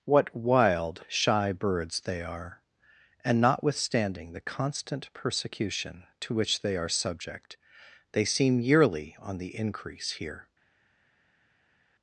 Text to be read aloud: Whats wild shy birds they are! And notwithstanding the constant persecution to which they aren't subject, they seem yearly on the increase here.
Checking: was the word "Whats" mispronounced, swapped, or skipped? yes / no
yes